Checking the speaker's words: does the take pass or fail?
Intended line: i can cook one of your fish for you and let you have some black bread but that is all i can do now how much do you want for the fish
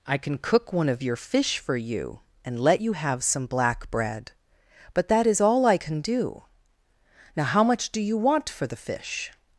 pass